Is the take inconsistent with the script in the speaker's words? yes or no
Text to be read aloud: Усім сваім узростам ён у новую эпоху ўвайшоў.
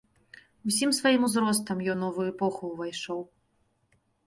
yes